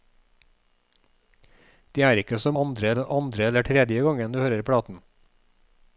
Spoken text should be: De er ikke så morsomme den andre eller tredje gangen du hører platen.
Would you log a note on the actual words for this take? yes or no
yes